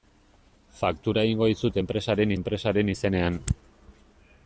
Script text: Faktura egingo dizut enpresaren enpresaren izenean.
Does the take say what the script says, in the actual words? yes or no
yes